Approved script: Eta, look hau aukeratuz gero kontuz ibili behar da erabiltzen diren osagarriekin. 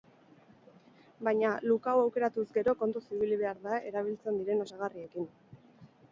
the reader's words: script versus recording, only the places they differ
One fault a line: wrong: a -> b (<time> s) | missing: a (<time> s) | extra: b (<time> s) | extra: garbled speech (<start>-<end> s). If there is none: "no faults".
wrong: Eta -> Baina (1.3 s)